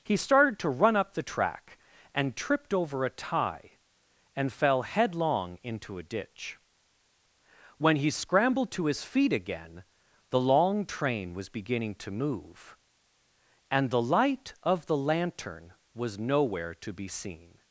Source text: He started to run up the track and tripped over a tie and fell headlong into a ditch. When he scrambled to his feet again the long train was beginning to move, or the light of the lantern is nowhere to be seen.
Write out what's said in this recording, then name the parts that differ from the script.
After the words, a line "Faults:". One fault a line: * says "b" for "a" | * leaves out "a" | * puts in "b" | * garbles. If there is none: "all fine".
He started to run up the track and tripped over a tie and fell headlong into a ditch. When he scrambled to his feet again the long train was beginning to move, and the light of the lantern was nowhere to be seen.
Faults:
* says "and" for "or"
* says "was" for "is"